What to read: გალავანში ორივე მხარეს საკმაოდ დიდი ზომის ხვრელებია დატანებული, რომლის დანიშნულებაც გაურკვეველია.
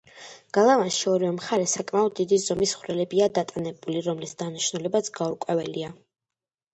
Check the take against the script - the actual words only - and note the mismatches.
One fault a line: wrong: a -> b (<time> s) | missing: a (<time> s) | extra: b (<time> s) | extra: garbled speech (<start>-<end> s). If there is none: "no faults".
no faults